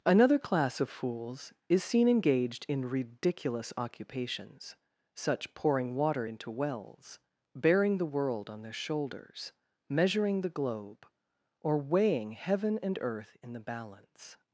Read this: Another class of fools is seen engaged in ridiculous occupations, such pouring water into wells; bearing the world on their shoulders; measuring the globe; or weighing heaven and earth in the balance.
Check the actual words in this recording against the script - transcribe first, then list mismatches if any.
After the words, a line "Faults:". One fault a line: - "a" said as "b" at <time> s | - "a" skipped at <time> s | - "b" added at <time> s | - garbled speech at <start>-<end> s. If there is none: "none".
Another class of fools is seen engaged in ridiculous occupations, such pouring water into wells; bearing the world on their shoulders; measuring the globe; or weighing heaven and earth in the balance.
Faults:
none